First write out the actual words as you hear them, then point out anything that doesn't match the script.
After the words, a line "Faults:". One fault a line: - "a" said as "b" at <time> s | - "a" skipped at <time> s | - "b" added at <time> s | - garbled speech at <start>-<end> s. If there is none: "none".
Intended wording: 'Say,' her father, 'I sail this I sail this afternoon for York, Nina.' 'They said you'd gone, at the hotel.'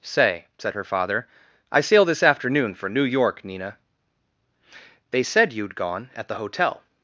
'Say,' said her father, 'I sail this afternoon for New York, Nina.' 'They said you'd gone, at the hotel.'
Faults:
- "said" added at 0.6 s
- "I sail this" skipped at 2.2 s
- "New" added at 2.9 s